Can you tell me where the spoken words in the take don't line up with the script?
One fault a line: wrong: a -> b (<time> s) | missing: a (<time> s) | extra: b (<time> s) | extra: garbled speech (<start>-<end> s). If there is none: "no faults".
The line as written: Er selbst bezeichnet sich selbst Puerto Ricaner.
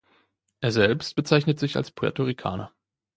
wrong: selbst -> als (1.7 s)